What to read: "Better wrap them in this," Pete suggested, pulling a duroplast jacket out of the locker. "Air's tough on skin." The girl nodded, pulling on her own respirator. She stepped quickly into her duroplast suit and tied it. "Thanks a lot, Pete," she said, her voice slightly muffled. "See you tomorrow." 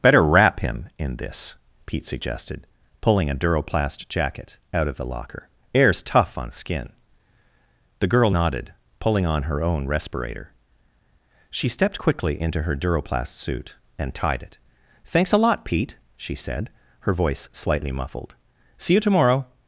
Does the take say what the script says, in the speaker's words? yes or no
no